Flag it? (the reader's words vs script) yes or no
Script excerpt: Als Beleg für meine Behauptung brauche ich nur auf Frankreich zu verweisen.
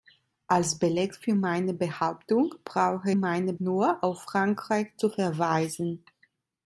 yes